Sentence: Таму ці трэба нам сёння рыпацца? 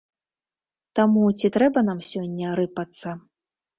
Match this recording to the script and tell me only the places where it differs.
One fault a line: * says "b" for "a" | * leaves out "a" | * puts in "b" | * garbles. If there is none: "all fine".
all fine